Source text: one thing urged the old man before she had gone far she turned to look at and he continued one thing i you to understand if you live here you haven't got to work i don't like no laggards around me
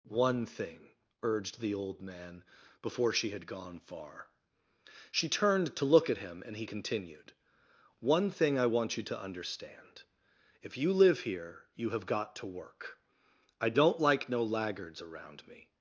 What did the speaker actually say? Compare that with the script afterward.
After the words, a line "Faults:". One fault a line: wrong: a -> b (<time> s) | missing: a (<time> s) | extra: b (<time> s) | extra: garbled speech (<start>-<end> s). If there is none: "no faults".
one thing urged the old man before she had gone far she turned to look at him and he continued one thing i want you to understand if you live here you have got to work i don't like no laggards around me
Faults:
extra: him (6.2 s)
extra: want (8.7 s)
wrong: haven't -> have (11.9 s)